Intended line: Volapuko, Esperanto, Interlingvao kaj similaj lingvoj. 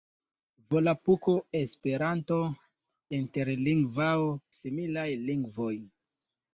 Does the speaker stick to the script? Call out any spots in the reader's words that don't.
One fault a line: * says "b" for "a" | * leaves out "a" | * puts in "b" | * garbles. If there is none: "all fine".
* leaves out "kaj"